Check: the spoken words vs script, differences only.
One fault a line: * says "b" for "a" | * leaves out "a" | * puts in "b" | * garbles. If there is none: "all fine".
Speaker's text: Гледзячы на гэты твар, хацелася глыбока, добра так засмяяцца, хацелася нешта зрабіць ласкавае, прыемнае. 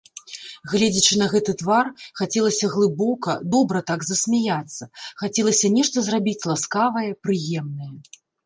all fine